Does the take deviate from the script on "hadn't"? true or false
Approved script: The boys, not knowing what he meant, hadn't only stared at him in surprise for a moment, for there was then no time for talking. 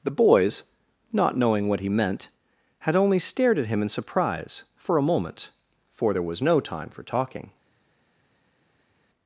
true